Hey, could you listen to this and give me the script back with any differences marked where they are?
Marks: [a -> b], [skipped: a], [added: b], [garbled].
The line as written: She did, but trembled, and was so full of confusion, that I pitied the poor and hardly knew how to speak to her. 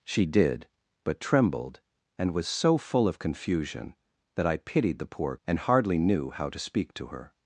She did, but trembled, and was so full of confusion, that I pitied the poor and hardly knew how to speak to her.